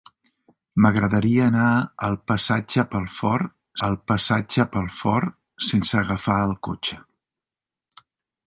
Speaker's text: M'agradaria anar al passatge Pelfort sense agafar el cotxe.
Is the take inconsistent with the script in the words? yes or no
yes